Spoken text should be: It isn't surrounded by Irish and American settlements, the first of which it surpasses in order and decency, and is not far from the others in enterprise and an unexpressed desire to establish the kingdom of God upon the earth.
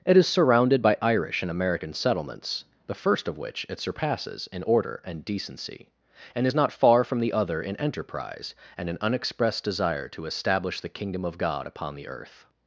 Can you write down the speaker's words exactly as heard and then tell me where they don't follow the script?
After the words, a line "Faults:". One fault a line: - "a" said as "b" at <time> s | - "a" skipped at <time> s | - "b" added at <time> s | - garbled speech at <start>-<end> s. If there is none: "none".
It is surrounded by Irish and American settlements, the first of which it surpasses in order and decency, and is not far from the other in enterprise and an unexpressed desire to establish the kingdom of God upon the earth.
Faults:
- "isn't" said as "is" at 0.2 s
- "others" said as "other" at 7.3 s